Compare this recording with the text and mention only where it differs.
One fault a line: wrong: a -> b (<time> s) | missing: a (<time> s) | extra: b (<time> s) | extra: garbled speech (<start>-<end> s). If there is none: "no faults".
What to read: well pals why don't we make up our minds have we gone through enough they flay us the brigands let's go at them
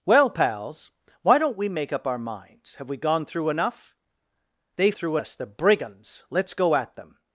wrong: flay -> through (4.9 s)